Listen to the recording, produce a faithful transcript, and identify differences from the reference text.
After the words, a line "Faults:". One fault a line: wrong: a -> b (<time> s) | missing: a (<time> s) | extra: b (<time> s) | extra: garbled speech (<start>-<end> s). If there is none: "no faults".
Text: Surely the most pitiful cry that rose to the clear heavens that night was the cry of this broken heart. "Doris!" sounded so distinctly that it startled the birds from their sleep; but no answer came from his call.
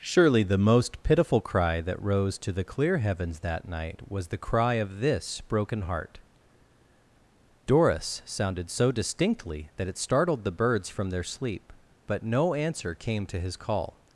Surely the most pitiful cry that rose to the clear heavens that night was the cry of this broken heart. "Doris!" sounded so distinctly that it startled the birds from their sleep; but no answer came to his call.
Faults:
wrong: from -> to (13.3 s)